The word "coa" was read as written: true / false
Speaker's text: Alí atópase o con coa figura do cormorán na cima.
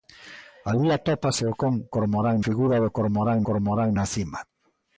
false